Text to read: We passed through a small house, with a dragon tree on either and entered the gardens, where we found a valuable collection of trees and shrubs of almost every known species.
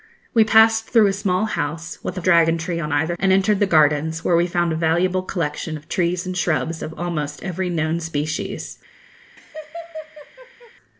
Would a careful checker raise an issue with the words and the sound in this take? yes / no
yes